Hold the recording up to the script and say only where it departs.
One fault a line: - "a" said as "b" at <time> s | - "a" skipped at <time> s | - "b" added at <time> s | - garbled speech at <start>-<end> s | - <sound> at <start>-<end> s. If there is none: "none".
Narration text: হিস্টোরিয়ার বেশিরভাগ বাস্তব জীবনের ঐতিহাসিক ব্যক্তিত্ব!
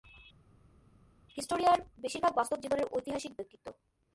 none